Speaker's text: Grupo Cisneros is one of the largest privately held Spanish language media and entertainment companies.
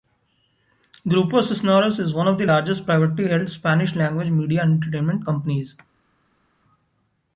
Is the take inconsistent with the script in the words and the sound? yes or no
no